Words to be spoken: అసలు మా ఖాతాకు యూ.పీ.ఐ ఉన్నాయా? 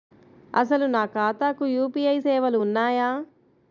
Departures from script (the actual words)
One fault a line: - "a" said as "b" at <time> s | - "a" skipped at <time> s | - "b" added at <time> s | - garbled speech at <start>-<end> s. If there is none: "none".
- "మా" said as "నా" at 0.8 s
- "సేవలు" added at 2.2 s